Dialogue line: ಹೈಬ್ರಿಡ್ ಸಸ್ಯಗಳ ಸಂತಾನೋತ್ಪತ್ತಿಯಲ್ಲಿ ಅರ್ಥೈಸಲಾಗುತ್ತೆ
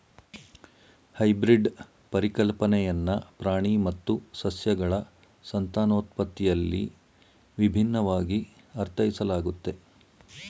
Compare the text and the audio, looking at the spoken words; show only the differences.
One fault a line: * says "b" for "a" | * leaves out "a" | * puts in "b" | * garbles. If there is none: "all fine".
* puts in "ಪರಿಕಲ್ಪನೆಯನ್ನ ಪ್ರಾಣಿ ಮತ್ತು"
* puts in "ವಿಭಿನ್ನವಾಗಿ"